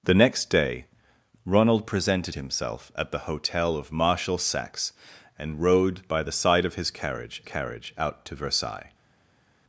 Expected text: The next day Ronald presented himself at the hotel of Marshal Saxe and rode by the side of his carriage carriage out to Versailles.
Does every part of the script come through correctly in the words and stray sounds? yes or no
yes